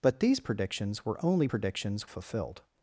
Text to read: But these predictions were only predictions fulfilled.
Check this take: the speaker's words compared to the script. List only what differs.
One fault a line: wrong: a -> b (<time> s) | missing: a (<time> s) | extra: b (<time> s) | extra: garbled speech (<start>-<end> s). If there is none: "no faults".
no faults